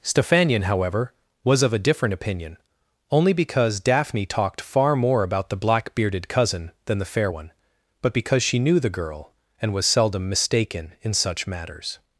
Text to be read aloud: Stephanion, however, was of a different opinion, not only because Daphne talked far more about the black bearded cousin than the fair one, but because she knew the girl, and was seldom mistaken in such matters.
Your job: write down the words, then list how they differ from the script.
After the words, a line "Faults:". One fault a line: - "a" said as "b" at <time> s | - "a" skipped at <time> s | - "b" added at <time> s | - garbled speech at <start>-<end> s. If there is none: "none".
Stephanion, however, was of a different opinion, only because Daphne talked far more about the black bearded cousin than the fair one, but because she knew the girl, and was seldom mistaken in such matters.
Faults:
- "not" skipped at 2.6 s